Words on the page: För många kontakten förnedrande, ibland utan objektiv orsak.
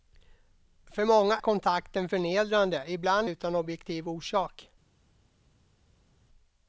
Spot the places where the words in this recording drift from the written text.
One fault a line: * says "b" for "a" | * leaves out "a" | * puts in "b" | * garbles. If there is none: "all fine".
all fine